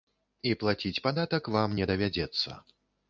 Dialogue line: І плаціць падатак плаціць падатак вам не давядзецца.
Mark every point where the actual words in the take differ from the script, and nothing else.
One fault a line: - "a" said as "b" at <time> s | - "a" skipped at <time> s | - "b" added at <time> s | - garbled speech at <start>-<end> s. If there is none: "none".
- "плаціць падатак" skipped at 1.5 s